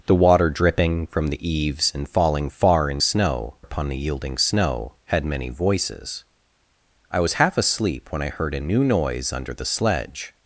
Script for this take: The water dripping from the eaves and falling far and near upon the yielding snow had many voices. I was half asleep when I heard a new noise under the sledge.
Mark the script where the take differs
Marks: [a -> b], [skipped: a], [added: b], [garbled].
The water dripping from the eaves and falling far and [near -> snow] upon the yielding snow had many voices. I was half asleep when I heard a new noise under the sledge.